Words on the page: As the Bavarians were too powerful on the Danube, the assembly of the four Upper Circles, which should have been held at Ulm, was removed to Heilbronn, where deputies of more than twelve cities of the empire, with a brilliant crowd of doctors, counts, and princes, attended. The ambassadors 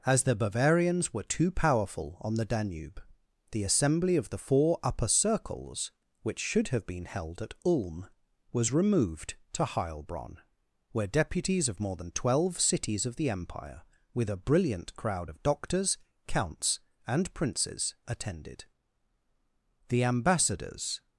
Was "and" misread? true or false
false